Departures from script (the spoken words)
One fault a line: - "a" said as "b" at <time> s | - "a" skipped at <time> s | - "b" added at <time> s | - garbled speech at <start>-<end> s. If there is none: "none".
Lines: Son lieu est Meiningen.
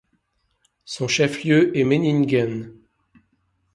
- "chef" added at 1.1 s